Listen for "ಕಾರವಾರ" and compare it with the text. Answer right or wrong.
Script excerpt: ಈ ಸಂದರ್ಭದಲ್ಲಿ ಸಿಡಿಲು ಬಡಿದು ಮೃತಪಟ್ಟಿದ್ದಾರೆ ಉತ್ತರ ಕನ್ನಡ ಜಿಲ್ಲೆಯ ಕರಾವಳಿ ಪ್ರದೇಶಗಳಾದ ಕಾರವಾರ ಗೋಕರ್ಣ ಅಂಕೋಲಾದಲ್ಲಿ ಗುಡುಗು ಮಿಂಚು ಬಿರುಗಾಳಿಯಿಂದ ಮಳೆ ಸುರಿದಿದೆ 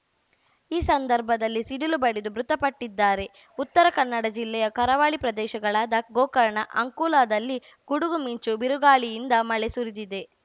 wrong